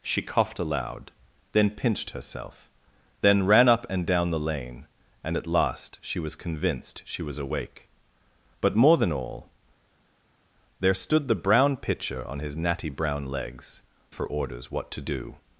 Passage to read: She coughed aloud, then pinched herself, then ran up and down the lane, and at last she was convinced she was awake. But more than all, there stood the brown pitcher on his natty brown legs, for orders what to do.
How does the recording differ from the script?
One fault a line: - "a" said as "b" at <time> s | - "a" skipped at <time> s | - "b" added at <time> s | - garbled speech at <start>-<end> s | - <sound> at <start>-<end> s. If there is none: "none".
none